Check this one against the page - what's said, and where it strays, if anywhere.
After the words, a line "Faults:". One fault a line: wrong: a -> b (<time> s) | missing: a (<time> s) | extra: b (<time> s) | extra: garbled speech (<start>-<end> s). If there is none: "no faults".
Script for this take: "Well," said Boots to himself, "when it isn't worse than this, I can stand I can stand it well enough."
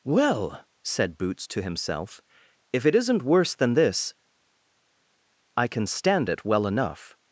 "Well," said Boots to himself, "if it isn't worse than this, I can stand it well enough."
Faults:
wrong: when -> if (2.7 s)
missing: I can stand (6.3 s)